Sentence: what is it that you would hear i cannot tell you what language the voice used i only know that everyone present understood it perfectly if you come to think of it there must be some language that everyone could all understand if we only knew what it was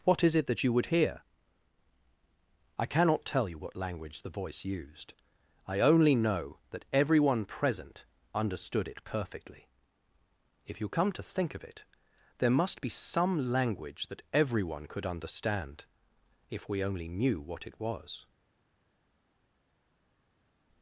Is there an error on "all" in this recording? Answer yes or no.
yes